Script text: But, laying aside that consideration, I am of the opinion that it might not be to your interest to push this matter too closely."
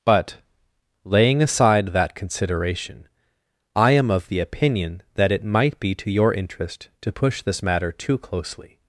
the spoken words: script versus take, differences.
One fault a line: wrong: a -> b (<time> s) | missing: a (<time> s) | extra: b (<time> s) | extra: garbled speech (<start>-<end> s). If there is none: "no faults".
missing: not (5.8 s)